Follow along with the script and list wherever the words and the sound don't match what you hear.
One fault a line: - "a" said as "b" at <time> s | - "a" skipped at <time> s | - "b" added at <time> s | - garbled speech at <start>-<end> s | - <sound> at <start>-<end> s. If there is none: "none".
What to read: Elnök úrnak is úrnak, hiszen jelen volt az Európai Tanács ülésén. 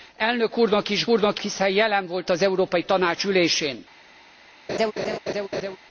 - laugh at 4.7-5.8 s